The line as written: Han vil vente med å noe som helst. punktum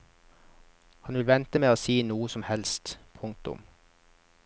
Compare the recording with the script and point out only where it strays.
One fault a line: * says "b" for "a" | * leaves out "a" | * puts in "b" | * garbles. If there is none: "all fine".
* puts in "si"